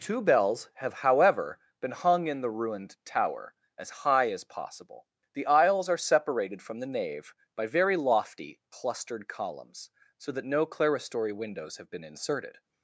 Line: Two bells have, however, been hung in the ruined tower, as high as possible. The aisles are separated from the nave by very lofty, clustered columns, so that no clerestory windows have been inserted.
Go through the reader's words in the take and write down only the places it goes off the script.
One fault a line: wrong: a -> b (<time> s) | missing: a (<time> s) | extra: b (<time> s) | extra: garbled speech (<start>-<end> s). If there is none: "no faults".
no faults